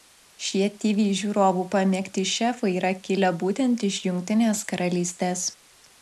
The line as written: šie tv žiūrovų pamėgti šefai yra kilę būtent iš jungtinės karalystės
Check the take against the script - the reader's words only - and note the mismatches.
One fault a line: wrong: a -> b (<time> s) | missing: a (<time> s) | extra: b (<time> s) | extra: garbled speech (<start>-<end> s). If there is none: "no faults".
no faults